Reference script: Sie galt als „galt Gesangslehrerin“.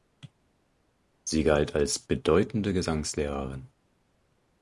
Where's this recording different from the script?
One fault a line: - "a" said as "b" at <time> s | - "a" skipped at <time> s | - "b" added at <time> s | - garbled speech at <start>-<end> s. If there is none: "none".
- "galt" said as "bedeutende" at 2.0 s